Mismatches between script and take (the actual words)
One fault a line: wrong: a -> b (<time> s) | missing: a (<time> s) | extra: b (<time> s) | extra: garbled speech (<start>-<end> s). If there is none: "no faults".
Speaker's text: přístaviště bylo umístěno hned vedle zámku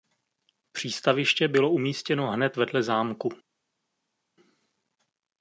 no faults